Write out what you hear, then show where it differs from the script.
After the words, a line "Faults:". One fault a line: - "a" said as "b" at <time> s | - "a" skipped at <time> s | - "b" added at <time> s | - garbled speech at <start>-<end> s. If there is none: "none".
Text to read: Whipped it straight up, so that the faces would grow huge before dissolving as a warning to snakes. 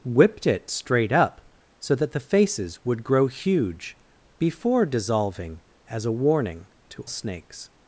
Whipped it straight up, so that the faces would grow huge before dissolving as a warning to snakes.
Faults:
none